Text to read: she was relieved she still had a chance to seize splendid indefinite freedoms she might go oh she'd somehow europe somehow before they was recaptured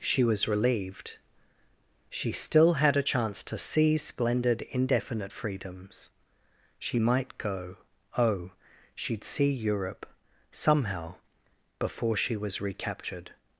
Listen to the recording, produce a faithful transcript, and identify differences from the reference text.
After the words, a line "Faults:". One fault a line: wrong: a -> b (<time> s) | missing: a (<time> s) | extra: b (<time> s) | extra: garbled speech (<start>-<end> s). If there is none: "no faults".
she was relieved she still had a chance to seize splendid indefinite freedoms she might go oh she'd see europe somehow before she was recaptured
Faults:
wrong: somehow -> see (9.3 s)
wrong: they -> she (12.2 s)